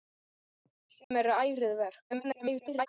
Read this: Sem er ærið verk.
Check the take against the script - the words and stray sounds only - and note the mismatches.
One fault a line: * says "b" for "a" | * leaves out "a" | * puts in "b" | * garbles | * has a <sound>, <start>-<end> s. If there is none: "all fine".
* has a dropout, 1.0-1.1 s
* garbles